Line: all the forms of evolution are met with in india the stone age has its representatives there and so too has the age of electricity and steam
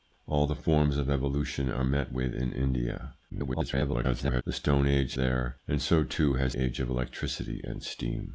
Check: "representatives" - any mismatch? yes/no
yes